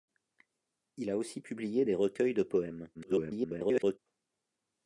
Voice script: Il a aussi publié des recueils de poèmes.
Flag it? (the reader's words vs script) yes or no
yes